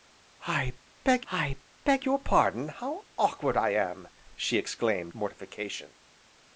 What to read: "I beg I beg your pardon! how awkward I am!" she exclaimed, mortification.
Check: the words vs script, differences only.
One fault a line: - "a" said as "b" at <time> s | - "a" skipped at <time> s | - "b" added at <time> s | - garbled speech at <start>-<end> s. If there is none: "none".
none